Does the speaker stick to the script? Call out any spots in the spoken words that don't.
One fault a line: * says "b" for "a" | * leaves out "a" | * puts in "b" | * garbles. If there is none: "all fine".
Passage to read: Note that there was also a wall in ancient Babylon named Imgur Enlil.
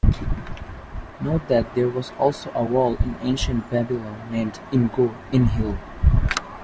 all fine